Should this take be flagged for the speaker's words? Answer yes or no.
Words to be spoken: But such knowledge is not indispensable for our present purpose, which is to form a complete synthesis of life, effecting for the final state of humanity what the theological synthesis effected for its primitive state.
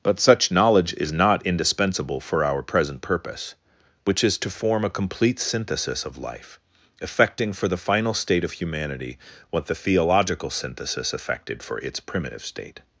no